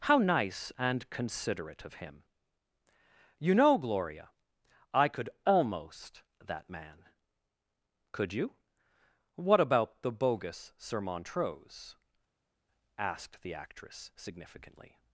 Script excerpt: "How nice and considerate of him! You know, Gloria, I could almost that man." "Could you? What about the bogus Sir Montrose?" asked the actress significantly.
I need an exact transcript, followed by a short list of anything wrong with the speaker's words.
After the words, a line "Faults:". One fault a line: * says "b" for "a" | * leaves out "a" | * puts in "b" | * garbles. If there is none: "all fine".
"How nice and considerate of him! You know, Gloria, I could almost that man." "Could you? What about the bogus Sir Montrose?" asked the actress significantly.
Faults:
all fine